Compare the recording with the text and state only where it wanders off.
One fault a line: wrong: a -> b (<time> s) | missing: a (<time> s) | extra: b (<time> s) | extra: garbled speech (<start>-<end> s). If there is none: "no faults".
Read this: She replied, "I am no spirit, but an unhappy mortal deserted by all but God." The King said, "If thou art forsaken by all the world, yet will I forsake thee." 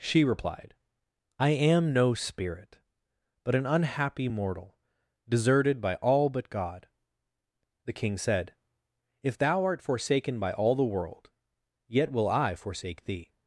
no faults